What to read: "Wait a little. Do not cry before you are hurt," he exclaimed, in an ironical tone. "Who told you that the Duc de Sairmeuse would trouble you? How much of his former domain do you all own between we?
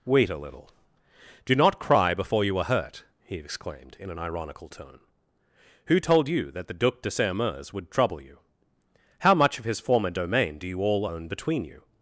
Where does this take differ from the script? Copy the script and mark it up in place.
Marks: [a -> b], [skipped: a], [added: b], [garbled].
"Wait a little. Do not cry before you are hurt," he exclaimed, in an ironical tone. "Who told you that the Duc de Sairmeuse would trouble you? How much of his former domain do you all own between [we? -> you]